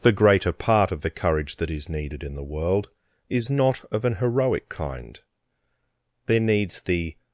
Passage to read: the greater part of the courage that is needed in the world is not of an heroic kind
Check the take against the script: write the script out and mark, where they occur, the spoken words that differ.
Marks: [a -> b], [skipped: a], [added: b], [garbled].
the greater part of the courage that is needed in the world is not of an heroic kind [added: there needs the]